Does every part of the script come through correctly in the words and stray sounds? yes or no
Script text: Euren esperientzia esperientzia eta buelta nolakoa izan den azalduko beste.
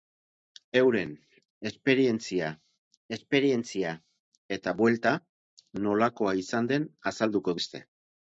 yes